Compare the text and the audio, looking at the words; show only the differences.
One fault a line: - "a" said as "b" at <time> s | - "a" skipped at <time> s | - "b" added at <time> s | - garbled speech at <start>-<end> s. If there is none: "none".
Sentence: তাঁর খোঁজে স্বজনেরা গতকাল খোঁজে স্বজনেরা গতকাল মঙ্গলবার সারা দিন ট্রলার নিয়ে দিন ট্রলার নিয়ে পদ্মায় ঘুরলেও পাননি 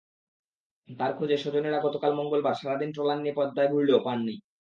- "খোঁজে স্বজনেরা গতকাল" skipped at 2.1 s
- "দিন ট্রলার নিয়ে" skipped at 3.4 s